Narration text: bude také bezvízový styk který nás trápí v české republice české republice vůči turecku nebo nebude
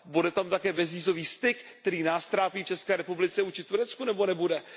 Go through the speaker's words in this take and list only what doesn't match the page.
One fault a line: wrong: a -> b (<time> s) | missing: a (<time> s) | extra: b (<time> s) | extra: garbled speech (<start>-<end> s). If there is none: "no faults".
extra: tam (0.3 s)
missing: české republice (3.4 s)